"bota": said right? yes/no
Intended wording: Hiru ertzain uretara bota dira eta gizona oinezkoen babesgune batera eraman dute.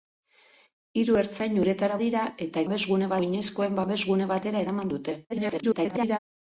no